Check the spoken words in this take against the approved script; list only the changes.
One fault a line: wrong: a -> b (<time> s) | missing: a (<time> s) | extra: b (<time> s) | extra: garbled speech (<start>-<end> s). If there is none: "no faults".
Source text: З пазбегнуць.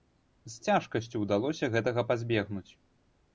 extra: цяжкасцю ўдалося гэтага (0.7 s)